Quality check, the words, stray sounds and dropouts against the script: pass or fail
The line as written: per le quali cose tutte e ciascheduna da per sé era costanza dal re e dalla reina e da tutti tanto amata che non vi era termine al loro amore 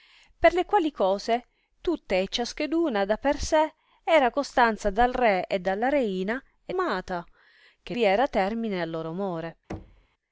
fail